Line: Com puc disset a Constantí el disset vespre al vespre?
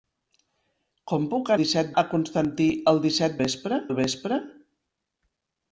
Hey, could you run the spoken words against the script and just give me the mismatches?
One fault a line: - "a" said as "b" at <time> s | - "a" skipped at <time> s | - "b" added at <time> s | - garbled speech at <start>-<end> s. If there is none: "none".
none